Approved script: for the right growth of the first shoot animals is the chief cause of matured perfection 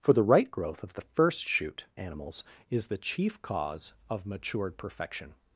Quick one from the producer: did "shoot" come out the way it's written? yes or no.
yes